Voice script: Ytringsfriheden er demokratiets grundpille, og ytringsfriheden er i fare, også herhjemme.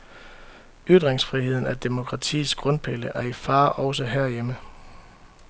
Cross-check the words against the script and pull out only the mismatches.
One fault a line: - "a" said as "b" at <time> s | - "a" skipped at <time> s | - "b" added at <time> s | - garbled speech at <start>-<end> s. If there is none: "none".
- "og ytringsfriheden" skipped at 3.1 s